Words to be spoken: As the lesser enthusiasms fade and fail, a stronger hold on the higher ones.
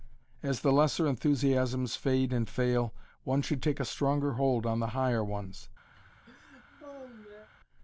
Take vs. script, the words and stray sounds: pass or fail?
fail